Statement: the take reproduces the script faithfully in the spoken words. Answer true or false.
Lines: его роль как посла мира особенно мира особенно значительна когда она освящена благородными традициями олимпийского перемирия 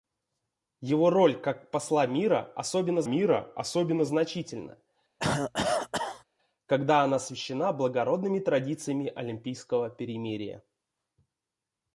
true